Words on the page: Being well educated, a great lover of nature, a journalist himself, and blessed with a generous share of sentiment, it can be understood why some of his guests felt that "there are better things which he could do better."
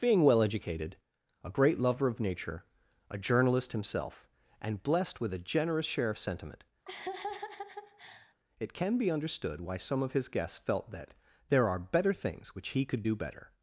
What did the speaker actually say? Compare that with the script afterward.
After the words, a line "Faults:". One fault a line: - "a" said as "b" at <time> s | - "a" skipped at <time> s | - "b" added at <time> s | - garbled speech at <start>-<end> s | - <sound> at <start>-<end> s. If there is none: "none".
Being well educated, a great lover of nature, a journalist himself, and blessed with a generous share of sentiment, it can be understood why some of his guests felt that "there are better things which he could do better."
Faults:
- laugh at 6.9-8.3 s